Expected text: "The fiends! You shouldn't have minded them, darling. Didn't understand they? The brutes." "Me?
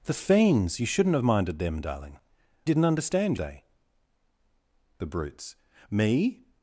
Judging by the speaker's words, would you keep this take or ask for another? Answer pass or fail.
pass